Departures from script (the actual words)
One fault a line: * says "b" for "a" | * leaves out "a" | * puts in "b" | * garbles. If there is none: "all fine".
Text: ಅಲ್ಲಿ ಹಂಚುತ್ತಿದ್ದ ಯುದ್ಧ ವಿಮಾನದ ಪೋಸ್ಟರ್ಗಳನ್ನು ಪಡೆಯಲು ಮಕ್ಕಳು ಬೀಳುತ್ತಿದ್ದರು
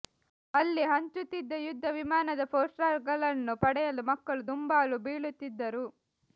* puts in "ದುಂಬಾಲು"